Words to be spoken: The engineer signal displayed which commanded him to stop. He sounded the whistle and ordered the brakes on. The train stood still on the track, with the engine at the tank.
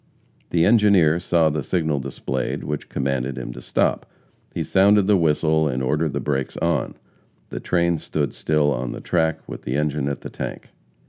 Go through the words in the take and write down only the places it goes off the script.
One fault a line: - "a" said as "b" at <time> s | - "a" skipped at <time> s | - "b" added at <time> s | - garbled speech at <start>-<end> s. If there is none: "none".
- "saw the" added at 1.2 s